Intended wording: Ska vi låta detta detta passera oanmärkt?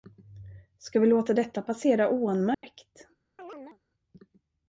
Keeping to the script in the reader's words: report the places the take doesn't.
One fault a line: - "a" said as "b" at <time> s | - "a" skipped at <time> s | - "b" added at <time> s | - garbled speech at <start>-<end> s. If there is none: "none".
- "detta" skipped at 1.6 s